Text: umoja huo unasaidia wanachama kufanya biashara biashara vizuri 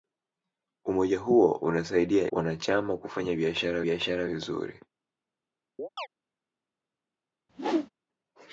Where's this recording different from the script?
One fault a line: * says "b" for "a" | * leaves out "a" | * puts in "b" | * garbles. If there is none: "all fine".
all fine